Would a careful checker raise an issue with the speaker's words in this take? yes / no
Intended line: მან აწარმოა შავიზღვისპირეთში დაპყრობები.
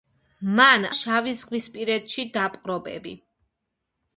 yes